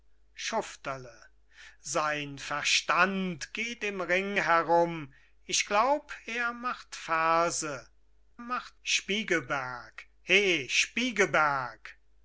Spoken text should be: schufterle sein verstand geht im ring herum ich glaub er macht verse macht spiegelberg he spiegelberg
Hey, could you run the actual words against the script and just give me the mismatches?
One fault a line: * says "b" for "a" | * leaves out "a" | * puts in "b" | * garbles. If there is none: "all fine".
all fine